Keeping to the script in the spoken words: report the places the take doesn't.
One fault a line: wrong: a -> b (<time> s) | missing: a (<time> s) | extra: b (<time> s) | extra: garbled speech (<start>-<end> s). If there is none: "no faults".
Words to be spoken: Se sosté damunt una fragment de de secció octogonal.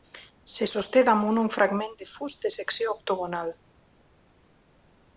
wrong: una -> un (1.4 s)
extra: fust (2.1 s)